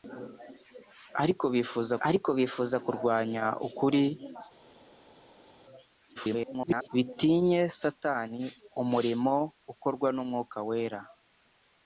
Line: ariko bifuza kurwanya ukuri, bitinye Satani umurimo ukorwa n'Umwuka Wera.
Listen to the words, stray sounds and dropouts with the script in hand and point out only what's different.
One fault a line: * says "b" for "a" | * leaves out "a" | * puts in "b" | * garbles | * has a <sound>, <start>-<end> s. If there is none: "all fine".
* puts in "ariko bifuza"
* garbles